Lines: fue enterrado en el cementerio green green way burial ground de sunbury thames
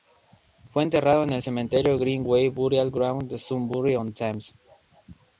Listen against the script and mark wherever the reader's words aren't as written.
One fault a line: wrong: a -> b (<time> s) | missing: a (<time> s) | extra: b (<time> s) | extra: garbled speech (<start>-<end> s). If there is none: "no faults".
missing: green (2.2 s)
extra: on (4.0 s)